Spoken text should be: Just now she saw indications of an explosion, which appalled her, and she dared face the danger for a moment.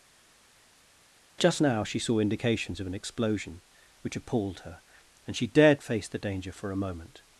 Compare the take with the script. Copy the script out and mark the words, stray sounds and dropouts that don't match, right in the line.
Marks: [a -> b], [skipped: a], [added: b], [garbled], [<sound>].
Just now she saw indications of an explosion, which appalled her, and she dared face the danger for a moment.